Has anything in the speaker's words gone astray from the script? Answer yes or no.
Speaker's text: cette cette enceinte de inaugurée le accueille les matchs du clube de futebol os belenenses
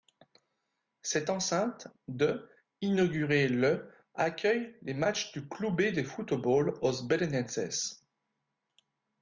yes